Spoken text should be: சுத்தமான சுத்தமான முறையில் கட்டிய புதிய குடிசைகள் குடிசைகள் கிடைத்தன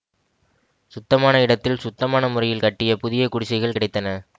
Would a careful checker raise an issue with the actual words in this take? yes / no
yes